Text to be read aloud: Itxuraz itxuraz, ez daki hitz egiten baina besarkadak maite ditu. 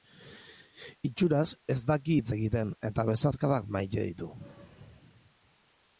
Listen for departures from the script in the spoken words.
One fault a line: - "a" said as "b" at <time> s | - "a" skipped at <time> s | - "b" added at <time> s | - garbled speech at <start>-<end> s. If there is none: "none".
- "itxuraz" skipped at 1.5 s
- "baina" said as "eta" at 2.9 s